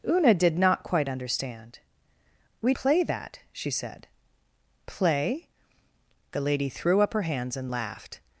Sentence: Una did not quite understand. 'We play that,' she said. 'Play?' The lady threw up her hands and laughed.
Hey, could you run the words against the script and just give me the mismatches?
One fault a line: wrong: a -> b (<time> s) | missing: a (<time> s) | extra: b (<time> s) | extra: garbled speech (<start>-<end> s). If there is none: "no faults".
no faults